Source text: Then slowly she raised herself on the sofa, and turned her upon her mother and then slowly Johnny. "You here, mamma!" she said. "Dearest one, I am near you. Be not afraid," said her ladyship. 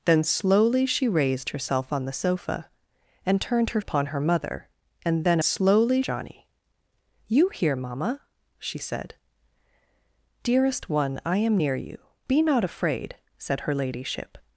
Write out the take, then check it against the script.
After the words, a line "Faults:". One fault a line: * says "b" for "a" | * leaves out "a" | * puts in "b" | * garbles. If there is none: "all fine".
Then slowly she raised herself on the sofa, and turned her upon her mother and then slowly Johnny. "You here, mamma!" she said. "Dearest one, I am near you. Be not afraid," said her ladyship.
Faults:
all fine